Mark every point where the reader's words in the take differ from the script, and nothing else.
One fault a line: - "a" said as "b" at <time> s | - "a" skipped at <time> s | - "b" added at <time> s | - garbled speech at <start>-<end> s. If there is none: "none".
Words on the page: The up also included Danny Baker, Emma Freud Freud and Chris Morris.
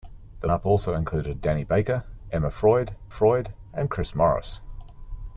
none